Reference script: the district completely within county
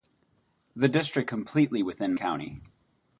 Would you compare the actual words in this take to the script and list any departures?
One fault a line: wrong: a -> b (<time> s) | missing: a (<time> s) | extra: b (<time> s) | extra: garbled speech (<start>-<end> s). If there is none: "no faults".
no faults